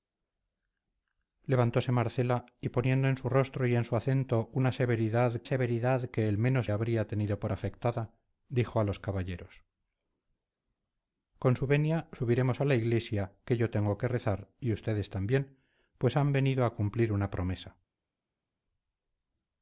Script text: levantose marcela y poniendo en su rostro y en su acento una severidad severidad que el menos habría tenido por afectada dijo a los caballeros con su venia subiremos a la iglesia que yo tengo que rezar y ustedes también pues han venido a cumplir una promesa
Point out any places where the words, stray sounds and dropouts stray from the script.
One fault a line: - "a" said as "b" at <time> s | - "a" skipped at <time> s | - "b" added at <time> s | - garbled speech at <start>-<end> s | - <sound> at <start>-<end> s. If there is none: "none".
none